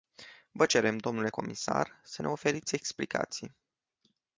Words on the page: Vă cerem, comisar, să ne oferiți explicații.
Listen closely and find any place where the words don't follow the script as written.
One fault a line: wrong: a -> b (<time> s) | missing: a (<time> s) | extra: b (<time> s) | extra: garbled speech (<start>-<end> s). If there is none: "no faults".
extra: dle (1.0 s)